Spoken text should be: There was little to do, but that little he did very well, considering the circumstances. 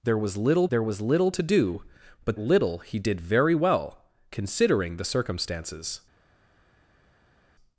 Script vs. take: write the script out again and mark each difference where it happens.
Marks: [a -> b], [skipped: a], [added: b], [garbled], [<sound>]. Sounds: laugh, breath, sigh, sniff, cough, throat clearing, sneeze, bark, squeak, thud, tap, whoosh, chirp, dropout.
There was little [added: there was little] to do, but [skipped: that] little he did very well, considering the circumstances.